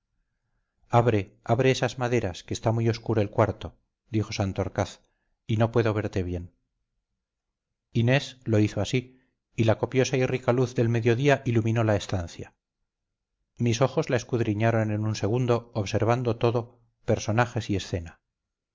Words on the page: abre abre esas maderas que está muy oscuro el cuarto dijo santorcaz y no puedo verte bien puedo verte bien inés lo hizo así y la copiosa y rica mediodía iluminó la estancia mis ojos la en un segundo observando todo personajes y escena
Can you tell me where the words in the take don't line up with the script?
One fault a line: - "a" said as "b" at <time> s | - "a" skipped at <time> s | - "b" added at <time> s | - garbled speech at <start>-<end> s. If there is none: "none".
- "puedo verte bien" skipped at 6.5 s
- "luz del" added at 10.5 s
- "escudriñaron" added at 14.2 s